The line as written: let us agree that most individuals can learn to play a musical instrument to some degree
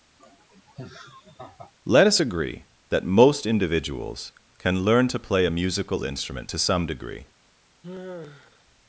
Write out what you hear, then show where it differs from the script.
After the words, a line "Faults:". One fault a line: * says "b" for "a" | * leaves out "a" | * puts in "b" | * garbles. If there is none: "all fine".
let us agree that most individuals can learn to play a musical instrument to some degree
Faults:
all fine